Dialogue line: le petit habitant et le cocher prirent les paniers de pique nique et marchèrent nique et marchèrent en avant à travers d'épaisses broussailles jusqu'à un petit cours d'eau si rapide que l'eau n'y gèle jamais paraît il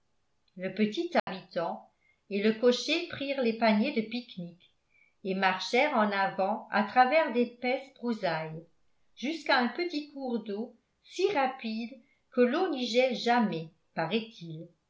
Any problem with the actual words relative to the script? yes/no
yes